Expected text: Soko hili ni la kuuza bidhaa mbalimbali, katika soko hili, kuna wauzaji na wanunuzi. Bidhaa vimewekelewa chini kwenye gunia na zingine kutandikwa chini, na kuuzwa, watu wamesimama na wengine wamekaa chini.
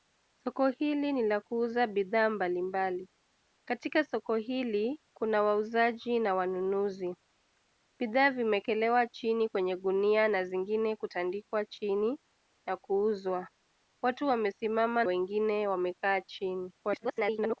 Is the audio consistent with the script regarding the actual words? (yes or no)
no